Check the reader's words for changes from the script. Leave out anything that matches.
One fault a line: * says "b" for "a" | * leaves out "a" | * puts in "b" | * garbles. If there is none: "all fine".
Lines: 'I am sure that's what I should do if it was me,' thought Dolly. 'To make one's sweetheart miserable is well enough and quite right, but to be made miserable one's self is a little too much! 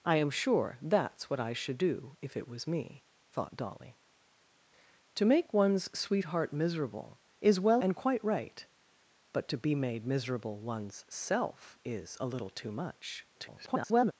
* leaves out "enough"
* garbles